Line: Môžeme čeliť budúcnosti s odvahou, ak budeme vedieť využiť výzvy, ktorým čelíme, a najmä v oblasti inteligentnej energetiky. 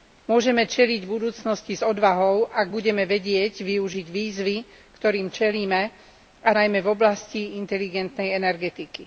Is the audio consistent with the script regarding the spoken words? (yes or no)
yes